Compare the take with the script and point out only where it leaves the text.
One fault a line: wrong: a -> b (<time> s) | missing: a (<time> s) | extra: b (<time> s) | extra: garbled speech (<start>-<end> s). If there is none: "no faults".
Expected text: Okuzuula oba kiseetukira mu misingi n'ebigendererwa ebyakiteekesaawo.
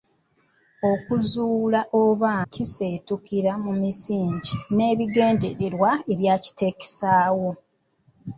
no faults